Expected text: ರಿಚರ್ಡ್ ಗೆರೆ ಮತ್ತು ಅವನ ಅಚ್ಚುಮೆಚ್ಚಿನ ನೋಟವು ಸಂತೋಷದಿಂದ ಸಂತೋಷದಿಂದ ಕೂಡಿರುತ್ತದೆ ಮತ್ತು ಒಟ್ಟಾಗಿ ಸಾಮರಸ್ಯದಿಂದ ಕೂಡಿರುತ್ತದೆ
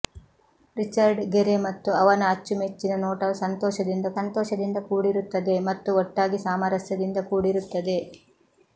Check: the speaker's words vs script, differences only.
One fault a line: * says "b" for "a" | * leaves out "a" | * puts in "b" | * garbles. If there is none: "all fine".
all fine